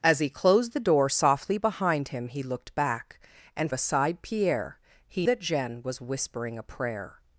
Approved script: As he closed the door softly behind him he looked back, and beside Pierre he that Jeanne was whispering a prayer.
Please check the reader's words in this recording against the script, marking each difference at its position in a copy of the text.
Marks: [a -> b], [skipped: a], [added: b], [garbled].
As he closed the door softly behind him he looked back, and beside Pierre he that Jeanne was whispering a prayer.